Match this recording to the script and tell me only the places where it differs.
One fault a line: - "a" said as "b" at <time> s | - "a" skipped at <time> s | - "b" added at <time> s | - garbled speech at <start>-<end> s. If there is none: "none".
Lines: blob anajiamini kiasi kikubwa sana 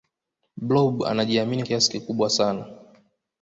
none